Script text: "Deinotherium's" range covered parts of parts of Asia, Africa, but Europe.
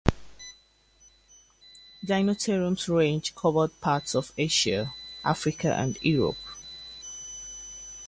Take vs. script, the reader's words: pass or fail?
fail